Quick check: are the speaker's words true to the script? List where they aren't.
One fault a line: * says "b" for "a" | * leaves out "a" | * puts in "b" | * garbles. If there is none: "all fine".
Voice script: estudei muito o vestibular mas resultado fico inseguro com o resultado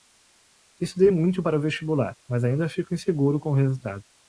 * puts in "para"
* says "ainda" for "resultado"